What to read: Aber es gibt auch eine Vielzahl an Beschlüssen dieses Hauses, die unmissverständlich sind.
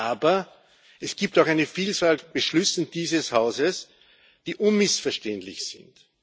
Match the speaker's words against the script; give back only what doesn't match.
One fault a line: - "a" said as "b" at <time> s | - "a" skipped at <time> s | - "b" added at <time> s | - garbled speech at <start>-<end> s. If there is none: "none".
none